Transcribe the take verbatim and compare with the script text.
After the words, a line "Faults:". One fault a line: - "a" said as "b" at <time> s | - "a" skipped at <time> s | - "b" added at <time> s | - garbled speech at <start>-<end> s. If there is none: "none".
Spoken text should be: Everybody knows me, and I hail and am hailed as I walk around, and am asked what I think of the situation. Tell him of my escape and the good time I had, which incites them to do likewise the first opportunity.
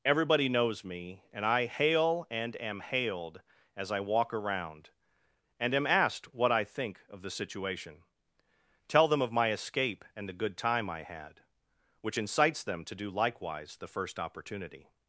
Everybody knows me, and I hail and am hailed as I walk around, and am asked what I think of the situation. Tell them of my escape and the good time I had, which incites them to do likewise the first opportunity.
Faults:
- "him" said as "them" at 9.1 s